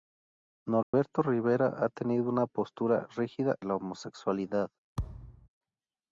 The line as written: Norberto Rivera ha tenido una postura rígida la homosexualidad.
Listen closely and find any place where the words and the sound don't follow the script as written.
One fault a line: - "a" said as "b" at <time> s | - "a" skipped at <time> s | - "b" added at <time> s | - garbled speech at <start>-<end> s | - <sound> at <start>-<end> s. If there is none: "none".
- dropout at 0.8-0.9 s
- thud at 5.0-5.5 s